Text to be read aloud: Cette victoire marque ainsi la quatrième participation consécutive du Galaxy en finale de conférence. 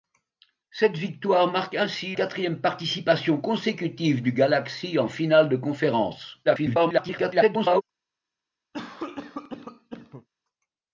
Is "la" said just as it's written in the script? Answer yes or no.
no